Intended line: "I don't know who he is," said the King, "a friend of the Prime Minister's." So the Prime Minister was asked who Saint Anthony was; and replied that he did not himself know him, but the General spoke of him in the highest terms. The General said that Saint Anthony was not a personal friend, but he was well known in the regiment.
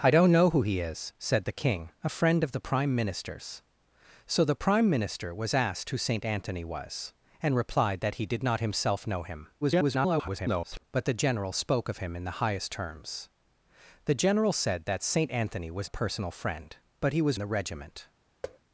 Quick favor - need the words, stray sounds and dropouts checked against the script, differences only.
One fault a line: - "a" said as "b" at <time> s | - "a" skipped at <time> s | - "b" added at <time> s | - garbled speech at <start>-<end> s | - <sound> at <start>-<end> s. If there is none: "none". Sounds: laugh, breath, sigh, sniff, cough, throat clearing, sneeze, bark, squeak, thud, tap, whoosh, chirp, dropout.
- garbled speech at 9.6-10.8 s
- "not" skipped at 15.9 s
- "well known in" skipped at 17.4 s
- thud at 18.4-18.6 s